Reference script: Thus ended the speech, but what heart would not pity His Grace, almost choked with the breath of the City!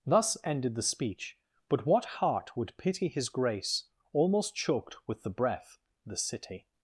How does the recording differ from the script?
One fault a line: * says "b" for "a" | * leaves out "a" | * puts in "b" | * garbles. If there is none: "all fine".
* leaves out "not"
* leaves out "of"